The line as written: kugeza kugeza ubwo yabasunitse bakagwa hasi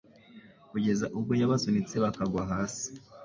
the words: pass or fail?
fail